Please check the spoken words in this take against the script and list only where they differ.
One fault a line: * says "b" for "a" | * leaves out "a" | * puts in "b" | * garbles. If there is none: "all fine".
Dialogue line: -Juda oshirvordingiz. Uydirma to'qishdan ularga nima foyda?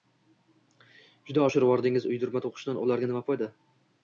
all fine